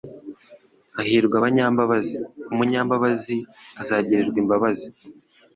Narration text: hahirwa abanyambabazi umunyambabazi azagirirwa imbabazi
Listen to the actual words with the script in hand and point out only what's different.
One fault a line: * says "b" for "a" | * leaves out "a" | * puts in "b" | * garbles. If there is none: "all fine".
all fine